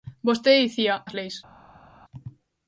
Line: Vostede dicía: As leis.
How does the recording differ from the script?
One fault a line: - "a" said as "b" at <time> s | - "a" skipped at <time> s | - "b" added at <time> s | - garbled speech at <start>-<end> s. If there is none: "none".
none